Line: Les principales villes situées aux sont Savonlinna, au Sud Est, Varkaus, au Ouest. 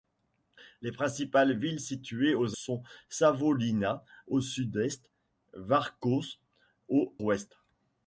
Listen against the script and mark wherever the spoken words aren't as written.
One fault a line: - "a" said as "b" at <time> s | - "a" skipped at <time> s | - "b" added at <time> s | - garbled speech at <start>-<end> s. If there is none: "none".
none